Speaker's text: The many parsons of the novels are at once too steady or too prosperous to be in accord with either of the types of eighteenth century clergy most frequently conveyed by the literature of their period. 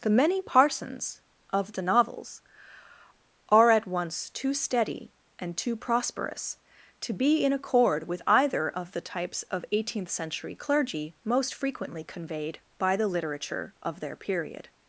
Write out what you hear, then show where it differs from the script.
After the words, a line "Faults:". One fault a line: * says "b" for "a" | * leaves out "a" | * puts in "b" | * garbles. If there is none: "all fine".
The many parsons of the novels are at once too steady and too prosperous to be in accord with either of the types of eighteenth century clergy most frequently conveyed by the literature of their period.
Faults:
* says "and" for "or"